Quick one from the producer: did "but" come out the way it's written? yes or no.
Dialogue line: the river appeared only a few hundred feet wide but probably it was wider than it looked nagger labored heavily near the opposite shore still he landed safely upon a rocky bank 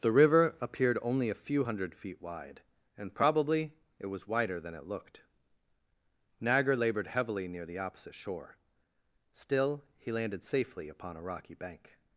no